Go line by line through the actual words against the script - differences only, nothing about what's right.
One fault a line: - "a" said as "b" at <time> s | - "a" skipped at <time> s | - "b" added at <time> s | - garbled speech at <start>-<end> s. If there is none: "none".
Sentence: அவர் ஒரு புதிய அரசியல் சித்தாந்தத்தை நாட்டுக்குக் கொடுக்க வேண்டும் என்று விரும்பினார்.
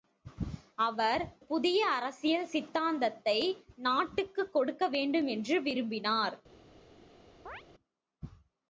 - "ஒரு" skipped at 1.2 s